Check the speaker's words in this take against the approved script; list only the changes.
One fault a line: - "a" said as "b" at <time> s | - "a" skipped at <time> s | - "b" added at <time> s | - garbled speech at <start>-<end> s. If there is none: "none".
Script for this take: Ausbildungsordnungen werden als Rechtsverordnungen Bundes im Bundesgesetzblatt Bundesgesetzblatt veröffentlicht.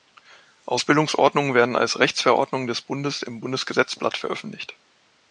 - "des" added at 2.6 s
- "Bundesgesetzblatt" skipped at 4.2 s